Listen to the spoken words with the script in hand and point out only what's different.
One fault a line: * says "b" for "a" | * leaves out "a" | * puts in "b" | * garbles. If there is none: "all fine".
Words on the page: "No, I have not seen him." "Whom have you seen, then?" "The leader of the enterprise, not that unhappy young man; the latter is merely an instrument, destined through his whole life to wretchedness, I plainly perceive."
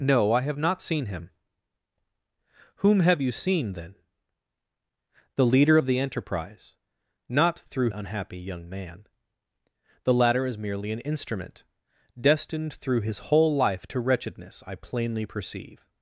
* says "through" for "that"